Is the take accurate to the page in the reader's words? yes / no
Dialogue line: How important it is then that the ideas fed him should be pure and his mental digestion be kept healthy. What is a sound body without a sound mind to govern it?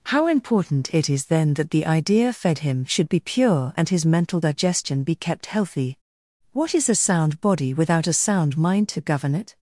no